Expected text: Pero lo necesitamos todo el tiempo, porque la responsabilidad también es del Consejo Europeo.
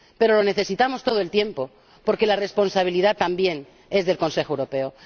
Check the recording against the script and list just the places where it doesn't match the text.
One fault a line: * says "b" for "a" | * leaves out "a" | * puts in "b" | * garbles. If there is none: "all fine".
all fine